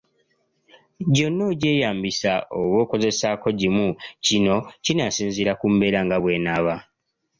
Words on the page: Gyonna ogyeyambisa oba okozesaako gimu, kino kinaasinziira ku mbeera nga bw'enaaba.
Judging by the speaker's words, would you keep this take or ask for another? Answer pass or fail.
pass